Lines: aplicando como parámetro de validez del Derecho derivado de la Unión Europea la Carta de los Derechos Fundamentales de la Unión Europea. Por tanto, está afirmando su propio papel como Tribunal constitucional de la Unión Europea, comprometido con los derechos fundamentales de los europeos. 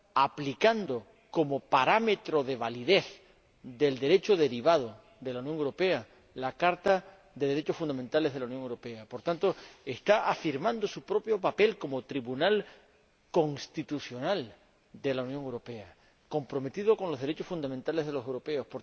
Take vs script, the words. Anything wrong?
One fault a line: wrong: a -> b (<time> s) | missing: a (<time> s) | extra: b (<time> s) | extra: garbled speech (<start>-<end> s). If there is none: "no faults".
no faults